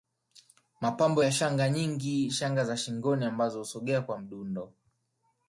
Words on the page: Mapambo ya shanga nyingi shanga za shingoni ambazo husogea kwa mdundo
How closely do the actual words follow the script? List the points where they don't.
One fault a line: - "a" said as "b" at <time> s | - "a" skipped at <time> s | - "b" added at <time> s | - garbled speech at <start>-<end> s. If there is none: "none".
none